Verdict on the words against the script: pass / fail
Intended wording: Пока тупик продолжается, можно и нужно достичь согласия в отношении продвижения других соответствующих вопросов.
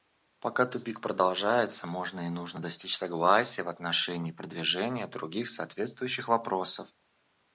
pass